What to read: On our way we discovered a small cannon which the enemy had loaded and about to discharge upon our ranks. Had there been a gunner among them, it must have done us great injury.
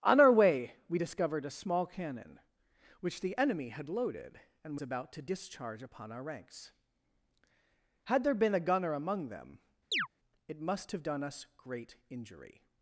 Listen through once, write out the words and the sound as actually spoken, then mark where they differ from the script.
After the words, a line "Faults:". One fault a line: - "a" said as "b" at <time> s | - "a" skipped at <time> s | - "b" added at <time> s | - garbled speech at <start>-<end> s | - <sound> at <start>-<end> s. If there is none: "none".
On our way we discovered a small cannon which the enemy had loaded and about to discharge upon our ranks. Had there been a gunner among them, it must have done us great injury.
Faults:
- chirp at 9.9-10.1 s